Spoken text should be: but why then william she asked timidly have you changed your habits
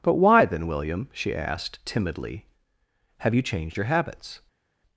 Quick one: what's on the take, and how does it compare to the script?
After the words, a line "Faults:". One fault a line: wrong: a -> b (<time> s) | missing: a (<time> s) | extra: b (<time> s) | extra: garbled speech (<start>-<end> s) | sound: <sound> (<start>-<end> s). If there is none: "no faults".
but why then william she asked timidly have you changed your habits
Faults:
no faults